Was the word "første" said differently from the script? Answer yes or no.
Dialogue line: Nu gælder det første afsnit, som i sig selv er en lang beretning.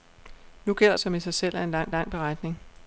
yes